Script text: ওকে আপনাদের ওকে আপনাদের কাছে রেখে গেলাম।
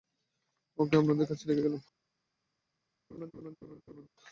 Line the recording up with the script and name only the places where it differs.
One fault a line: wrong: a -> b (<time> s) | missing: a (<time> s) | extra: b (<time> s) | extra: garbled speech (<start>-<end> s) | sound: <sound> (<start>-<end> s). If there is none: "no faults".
missing: ওকে আপনাদের (1.3 s)
sound: laugh (3.1-4.1 s)